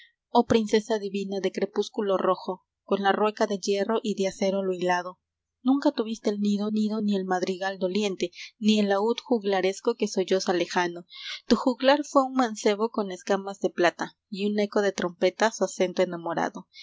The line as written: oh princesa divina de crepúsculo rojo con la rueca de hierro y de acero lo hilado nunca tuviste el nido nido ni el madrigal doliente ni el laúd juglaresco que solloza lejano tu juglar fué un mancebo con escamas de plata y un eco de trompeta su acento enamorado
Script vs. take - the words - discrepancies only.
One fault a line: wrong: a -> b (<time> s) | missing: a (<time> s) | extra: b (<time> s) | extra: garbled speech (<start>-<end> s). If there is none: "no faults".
no faults